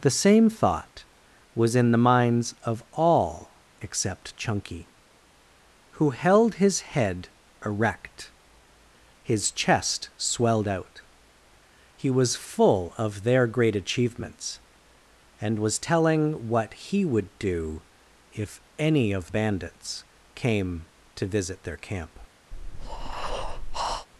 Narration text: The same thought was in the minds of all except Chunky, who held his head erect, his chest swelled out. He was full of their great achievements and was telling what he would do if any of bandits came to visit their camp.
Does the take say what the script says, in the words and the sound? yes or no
no